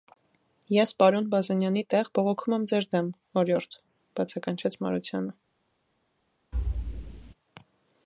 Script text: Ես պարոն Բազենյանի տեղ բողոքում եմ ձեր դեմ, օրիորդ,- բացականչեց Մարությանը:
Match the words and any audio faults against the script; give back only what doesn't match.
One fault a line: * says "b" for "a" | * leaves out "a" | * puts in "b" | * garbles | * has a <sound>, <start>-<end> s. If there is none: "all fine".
* has a thud, 6.5-7.3 s